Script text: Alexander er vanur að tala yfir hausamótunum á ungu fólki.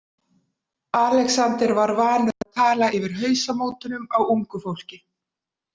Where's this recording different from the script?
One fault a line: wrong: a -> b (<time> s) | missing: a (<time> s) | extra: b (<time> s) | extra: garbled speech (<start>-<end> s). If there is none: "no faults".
wrong: er -> var (1.8 s)